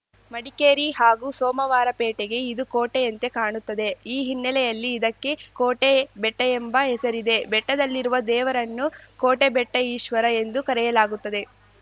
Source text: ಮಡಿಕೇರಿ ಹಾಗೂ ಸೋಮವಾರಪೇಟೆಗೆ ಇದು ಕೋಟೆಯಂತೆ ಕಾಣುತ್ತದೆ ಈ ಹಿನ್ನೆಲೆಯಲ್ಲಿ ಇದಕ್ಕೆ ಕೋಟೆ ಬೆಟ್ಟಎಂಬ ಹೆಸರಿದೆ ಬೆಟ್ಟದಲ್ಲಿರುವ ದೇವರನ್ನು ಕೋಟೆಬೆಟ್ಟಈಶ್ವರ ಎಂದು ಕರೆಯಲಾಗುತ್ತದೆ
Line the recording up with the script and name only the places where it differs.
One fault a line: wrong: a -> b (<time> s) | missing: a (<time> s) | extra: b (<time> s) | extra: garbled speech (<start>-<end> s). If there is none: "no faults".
no faults